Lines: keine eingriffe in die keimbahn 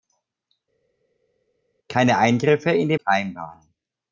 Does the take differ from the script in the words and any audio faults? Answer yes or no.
no